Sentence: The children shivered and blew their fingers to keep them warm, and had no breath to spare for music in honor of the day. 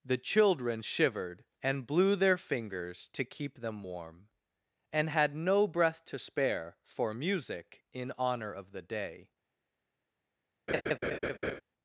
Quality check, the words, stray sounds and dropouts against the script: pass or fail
fail